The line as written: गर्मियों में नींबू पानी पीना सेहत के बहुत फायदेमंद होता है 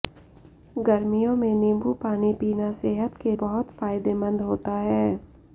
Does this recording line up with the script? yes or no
yes